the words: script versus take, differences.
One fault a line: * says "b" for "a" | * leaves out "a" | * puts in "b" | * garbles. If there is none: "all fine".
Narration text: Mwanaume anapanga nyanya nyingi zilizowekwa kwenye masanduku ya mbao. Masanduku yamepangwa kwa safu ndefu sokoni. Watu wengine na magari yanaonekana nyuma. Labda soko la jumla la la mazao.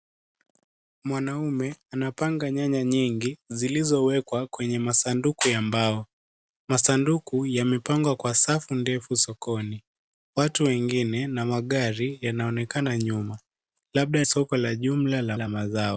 all fine